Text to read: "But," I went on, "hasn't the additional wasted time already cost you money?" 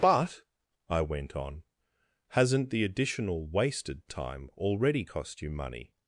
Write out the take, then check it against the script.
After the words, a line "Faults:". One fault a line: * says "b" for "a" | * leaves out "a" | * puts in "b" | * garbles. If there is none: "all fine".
"But," I went on, "hasn't the additional wasted time already cost you money?"
Faults:
all fine